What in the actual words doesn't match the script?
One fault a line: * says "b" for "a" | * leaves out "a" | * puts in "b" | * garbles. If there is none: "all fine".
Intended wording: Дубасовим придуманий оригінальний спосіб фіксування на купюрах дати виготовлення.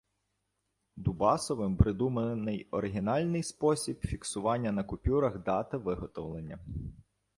all fine